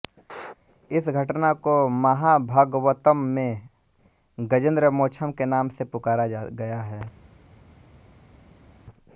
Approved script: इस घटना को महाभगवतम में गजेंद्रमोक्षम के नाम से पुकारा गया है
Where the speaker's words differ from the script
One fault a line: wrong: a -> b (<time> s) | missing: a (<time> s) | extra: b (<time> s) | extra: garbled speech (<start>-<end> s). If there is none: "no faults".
no faults